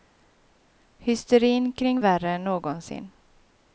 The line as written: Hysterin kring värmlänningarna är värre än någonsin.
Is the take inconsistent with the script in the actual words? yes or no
yes